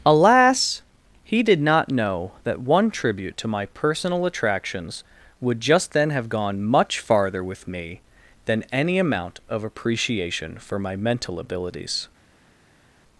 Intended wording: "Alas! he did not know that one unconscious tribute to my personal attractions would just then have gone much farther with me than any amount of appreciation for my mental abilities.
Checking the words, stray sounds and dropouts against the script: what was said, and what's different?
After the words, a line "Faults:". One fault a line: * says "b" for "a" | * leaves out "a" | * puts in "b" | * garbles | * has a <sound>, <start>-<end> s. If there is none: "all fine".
"Alas! he did not know that one tribute to my personal attractions would just then have gone much farther with me than any amount of appreciation for my mental abilities.
Faults:
* leaves out "unconscious"